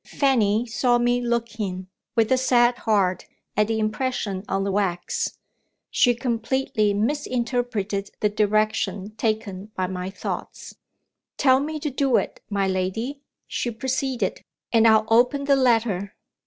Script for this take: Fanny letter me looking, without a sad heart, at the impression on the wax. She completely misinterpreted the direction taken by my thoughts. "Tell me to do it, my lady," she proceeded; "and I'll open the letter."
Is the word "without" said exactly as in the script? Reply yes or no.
no